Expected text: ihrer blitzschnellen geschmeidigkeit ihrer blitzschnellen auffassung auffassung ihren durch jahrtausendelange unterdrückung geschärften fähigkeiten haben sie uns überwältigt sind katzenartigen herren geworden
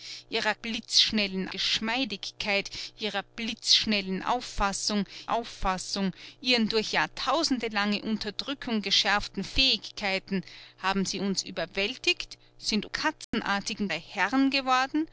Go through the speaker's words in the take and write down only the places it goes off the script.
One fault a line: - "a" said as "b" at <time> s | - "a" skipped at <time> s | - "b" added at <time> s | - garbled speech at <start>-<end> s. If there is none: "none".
none